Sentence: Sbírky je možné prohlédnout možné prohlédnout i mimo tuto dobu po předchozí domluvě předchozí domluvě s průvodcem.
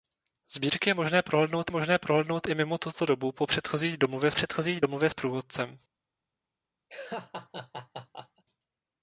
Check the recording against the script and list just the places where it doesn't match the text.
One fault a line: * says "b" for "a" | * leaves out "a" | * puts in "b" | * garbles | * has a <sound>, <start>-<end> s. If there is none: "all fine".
* has a laugh, 6.9-8.4 s